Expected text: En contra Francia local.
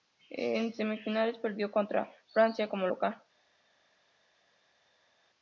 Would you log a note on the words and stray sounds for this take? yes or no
yes